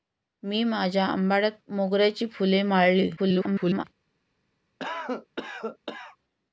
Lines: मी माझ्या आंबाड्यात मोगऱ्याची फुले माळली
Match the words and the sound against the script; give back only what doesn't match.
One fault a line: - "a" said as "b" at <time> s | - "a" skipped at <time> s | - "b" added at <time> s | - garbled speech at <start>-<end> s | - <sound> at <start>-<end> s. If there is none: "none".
- garbled speech at 3.2-3.8 s
- cough at 4.8-6.2 s